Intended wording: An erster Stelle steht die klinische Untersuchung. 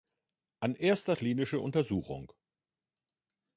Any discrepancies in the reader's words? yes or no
yes